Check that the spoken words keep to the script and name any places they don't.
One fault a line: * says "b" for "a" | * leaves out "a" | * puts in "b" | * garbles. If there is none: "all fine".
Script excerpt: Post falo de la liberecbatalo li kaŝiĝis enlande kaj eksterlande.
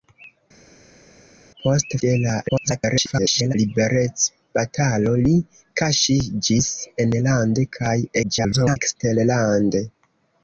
* leaves out "falo"
* garbles
* garbles